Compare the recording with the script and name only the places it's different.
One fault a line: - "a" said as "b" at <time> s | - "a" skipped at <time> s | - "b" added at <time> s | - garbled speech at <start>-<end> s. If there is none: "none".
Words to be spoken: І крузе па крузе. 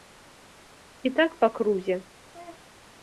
- "крузе" said as "так" at 1.2 s